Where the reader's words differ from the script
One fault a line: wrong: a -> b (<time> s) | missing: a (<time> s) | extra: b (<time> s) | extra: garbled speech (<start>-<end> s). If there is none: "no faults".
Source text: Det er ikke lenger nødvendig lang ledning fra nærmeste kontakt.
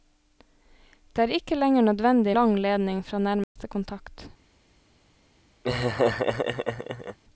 no faults